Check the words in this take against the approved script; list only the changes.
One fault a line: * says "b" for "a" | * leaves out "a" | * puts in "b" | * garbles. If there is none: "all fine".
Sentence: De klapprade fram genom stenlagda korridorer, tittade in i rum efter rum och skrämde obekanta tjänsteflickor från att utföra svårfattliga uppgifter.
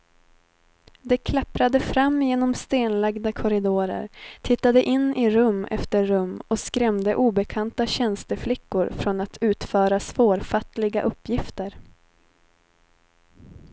all fine